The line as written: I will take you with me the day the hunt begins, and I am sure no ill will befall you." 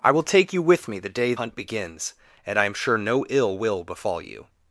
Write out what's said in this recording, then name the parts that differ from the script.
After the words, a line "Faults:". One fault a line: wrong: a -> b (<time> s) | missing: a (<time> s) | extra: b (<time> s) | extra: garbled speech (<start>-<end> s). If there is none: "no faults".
I will take you with me the day hunt begins, and I am sure no ill will befall you."
Faults:
missing: the (1.4 s)